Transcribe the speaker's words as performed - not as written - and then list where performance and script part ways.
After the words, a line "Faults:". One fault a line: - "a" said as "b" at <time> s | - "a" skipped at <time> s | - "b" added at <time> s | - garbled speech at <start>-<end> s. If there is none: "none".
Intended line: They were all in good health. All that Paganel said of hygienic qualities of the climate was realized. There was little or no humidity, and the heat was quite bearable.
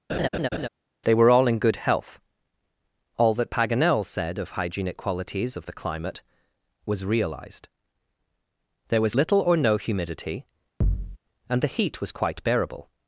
They were all in good health. All that Paganel said of hygienic qualities of the climate was realized. There was little or no humidity, and the heat was quite bearable.
Faults:
none